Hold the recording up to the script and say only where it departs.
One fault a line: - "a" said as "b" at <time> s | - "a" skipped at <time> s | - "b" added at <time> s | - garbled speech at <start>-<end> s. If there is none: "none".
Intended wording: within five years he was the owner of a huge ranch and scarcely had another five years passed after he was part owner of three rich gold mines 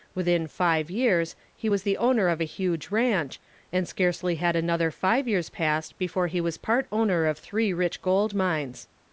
- "after" said as "before" at 6.0 s